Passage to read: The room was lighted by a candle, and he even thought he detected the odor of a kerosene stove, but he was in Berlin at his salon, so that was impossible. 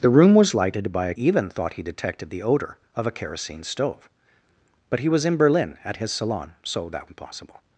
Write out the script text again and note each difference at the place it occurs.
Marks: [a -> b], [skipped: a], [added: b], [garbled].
The room was lighted by a [skipped: candle, and he] even thought he detected the odor of a kerosene stove, but he was in Berlin at his salon, so that [skipped: was] impossible.